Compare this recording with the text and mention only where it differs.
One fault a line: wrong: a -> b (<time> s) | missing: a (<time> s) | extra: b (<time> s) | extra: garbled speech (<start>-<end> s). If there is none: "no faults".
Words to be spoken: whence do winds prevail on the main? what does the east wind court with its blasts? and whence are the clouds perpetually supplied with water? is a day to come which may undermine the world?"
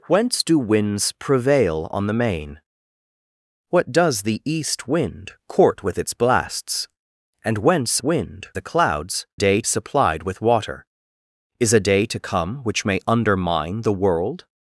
wrong: are -> wind (8.0 s)
wrong: perpetually -> day (9.3 s)